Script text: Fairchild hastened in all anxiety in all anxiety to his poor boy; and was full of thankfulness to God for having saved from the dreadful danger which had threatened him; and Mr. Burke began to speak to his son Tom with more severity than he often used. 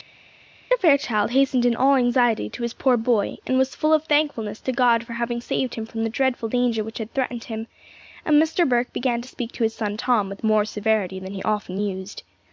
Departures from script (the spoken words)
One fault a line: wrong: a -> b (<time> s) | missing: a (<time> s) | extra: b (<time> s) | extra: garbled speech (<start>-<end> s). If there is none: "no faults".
missing: in all anxiety (2.5 s)
extra: him (5.7 s)